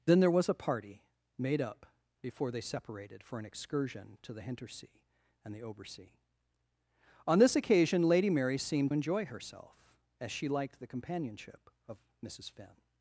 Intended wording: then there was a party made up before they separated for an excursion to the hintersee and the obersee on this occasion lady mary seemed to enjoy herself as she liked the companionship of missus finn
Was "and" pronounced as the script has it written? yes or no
yes